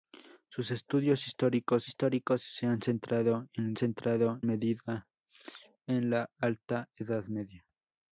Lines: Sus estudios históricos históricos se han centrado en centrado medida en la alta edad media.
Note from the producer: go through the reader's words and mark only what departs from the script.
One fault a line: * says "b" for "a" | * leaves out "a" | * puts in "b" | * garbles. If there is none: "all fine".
all fine